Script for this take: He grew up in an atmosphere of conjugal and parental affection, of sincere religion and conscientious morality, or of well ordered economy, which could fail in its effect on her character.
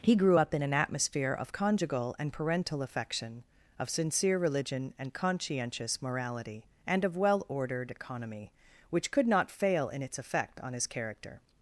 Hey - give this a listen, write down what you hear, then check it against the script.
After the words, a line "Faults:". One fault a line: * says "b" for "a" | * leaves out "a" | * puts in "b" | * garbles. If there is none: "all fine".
He grew up in an atmosphere of conjugal and parental affection, of sincere religion and conscientious morality, and of well ordered economy, which could not fail in its effect on his character.
Faults:
* says "and" for "or"
* puts in "not"
* says "his" for "her"